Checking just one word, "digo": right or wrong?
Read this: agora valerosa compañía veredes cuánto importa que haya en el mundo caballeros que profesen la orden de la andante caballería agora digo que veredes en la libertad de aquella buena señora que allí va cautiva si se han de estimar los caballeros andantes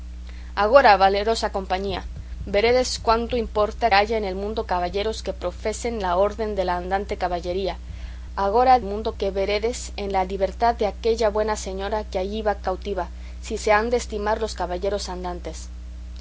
wrong